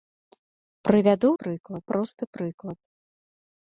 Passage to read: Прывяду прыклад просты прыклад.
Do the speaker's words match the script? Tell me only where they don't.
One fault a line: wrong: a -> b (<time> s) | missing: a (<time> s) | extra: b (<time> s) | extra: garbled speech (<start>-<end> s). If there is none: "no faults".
no faults